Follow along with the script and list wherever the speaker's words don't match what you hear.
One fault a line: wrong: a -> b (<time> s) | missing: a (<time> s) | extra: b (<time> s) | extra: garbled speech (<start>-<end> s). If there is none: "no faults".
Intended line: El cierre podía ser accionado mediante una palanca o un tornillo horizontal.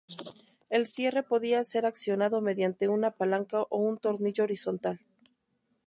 no faults